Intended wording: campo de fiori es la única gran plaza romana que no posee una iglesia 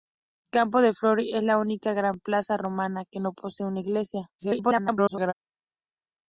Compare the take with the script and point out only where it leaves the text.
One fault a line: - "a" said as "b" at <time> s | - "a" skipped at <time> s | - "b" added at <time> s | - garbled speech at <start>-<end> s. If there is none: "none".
- garbled speech at 4.4-5.3 s